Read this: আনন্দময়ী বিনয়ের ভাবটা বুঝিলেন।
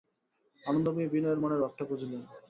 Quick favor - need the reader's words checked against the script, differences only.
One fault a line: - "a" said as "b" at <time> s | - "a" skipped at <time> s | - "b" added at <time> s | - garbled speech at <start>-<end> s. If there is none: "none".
- "মনের" added at 1.4 s